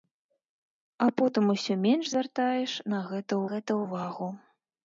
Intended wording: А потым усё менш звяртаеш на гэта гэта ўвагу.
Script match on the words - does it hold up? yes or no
yes